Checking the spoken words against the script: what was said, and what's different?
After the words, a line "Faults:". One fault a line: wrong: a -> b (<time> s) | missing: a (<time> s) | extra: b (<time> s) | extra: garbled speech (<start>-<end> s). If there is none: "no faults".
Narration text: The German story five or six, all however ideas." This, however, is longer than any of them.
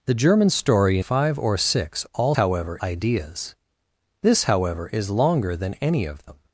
The German story five or six, all however ideas." This, however, is longer than any of them.
Faults:
no faults